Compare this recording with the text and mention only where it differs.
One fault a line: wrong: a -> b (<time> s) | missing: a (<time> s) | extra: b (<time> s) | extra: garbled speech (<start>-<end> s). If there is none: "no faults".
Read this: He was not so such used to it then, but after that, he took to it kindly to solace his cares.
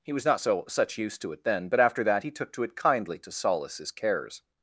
no faults